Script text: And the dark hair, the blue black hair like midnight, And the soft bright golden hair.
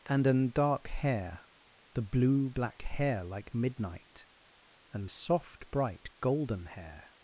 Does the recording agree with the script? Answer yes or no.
no